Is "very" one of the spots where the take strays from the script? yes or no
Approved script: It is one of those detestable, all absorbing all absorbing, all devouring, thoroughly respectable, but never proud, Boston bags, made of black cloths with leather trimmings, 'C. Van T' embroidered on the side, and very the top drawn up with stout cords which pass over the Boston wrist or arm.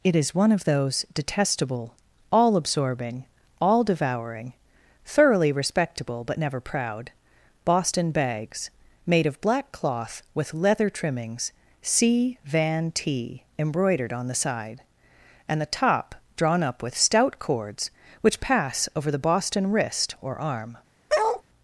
yes